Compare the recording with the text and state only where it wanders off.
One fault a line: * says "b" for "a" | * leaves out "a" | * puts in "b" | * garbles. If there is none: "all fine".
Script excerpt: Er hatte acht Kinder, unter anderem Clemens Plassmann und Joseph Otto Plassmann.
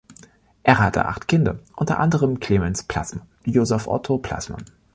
* leaves out "und"